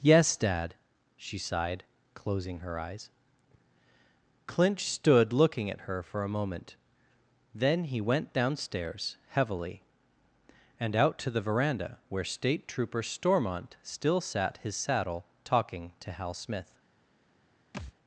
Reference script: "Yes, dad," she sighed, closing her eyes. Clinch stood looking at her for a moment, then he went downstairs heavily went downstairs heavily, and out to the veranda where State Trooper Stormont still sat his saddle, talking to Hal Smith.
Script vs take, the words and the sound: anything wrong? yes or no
yes